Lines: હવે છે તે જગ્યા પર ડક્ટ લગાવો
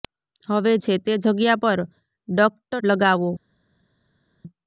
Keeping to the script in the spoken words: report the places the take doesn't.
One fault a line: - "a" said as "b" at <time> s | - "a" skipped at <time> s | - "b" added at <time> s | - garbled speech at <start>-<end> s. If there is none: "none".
none